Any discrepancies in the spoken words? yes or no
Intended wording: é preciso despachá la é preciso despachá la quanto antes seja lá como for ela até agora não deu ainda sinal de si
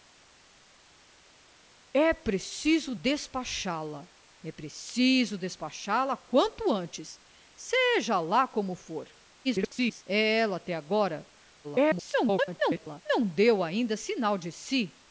yes